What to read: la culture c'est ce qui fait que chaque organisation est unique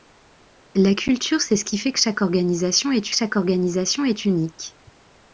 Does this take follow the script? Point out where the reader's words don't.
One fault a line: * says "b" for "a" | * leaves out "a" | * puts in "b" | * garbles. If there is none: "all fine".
* puts in "chaque organisation est"